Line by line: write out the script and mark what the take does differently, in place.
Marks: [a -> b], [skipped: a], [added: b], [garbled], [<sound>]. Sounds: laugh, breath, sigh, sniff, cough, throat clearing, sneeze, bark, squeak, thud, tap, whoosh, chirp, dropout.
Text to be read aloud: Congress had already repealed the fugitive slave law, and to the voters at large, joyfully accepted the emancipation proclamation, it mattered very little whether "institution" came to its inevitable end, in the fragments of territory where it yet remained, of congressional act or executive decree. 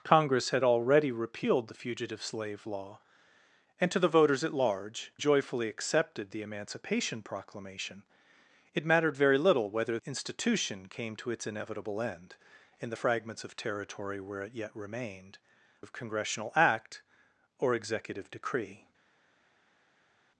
Congress had already repealed the fugitive slave law, and to the voters at large, joyfully accepted the emancipation proclamation, it mattered very little whether "institution" came to its inevitable end, in the fragments of territory where it yet remained, of congressional act or executive decree.